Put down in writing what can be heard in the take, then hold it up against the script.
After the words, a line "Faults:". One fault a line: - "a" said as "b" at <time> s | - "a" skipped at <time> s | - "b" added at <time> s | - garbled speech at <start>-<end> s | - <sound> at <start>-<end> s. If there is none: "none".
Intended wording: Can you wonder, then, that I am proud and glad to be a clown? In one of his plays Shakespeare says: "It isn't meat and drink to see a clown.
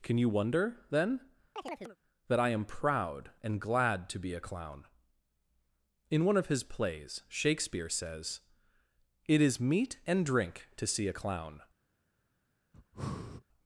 Can you wonder, then, that I am proud and glad to be a clown? In one of his plays Shakespeare says: "It is meat and drink to see a clown.
Faults:
- chirp at 1.6-2.0 s
- "isn't" said as "is" at 9.4 s
- breath at 12.7-13.4 s